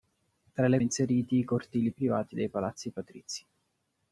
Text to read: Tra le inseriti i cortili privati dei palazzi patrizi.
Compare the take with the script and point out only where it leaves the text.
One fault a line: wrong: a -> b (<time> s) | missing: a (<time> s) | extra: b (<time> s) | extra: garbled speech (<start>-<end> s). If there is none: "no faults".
no faults